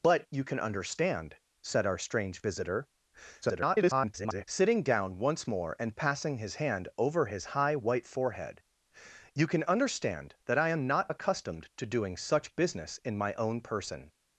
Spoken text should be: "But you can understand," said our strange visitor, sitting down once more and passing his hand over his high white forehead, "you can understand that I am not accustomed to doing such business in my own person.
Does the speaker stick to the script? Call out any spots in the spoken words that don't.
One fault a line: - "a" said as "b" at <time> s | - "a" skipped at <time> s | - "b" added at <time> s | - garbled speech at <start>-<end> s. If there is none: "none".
- garbled speech at 3.4-4.4 s